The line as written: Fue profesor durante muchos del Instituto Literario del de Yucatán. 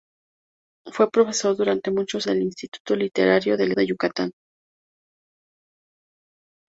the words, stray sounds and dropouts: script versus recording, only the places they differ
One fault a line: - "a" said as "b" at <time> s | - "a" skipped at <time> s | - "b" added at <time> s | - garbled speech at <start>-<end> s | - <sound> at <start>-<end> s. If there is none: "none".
none